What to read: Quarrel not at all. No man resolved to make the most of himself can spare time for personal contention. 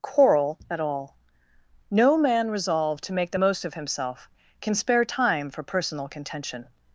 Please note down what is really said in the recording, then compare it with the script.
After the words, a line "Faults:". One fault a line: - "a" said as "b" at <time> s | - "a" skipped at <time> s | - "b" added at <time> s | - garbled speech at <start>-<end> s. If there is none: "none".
Quarrel at all. No man resolved to make the most of himself can spare time for personal contention.
Faults:
- "not" skipped at 0.6 s